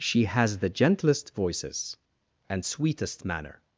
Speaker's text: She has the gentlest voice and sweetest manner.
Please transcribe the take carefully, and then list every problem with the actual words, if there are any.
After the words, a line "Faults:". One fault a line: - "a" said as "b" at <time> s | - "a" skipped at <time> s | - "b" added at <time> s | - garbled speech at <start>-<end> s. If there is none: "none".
She has the gentlest voices and sweetest manner.
Faults:
- "voice" said as "voices" at 1.4 s